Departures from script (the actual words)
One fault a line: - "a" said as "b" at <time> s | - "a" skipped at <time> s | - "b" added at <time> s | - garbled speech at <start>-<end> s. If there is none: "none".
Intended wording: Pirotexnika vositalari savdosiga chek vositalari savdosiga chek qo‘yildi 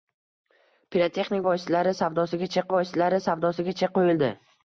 none